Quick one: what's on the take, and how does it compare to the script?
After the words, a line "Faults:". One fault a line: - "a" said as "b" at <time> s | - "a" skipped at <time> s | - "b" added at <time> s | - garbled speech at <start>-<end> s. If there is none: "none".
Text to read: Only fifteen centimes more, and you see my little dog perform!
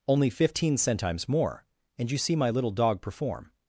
Only fifteen centimes more, and you see my little dog perform!
Faults:
none